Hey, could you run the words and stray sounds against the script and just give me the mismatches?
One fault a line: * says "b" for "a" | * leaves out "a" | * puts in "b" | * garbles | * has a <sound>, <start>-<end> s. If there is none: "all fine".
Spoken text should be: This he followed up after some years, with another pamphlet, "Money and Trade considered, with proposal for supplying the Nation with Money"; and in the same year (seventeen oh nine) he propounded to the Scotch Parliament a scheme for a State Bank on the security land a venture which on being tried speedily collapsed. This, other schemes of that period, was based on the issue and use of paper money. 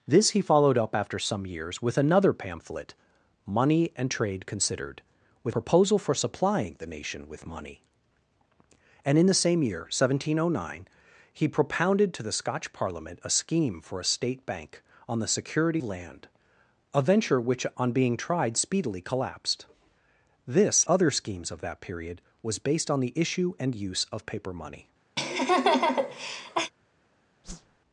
* has a laugh, 25.2-26.7 s
* has a whoosh, 27.4-27.8 s